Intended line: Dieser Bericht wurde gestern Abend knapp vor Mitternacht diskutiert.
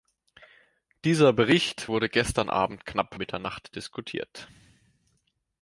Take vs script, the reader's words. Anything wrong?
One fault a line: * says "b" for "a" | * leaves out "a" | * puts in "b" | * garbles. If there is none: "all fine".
* leaves out "vor"